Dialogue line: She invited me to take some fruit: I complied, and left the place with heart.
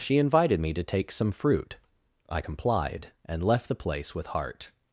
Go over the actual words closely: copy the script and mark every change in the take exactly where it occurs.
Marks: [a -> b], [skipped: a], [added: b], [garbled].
She invited me to take some fruit: I complied, and left the place with heart.